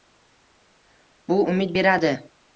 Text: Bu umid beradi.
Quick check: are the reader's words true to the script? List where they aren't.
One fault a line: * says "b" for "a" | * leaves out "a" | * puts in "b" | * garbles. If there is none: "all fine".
all fine